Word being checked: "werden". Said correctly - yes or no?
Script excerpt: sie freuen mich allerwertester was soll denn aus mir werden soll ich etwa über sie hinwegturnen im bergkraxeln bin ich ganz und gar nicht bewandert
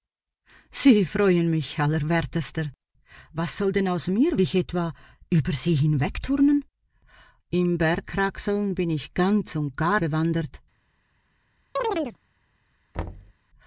no